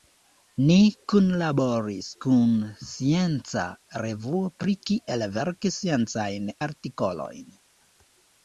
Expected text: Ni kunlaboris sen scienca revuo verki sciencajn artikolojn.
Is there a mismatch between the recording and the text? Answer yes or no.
yes